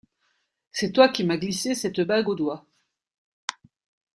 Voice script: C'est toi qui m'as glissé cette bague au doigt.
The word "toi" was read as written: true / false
true